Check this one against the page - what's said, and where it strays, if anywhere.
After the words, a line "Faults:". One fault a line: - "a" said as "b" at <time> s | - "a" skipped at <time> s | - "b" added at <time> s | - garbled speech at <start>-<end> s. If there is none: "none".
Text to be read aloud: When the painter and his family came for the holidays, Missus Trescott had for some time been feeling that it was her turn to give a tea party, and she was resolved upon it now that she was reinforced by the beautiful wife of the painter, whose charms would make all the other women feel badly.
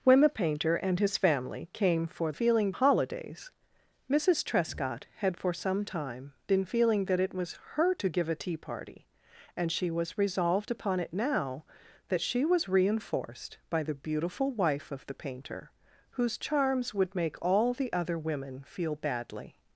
When the painter and his family came for feeling holidays, Missus Trescott had for some time been feeling that it was her to give a tea party, and she was resolved upon it now that she was reinforced by the beautiful wife of the painter, whose charms would make all the other women feel badly.
Faults:
- "the" said as "feeling" at 2.3 s
- "turn" skipped at 8.0 s